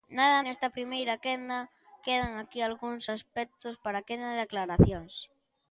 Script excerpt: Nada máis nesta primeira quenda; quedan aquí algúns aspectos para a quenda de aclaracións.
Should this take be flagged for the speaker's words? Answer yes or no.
yes